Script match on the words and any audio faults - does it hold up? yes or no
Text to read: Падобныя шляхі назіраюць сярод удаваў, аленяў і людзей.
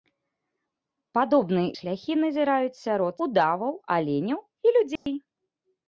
no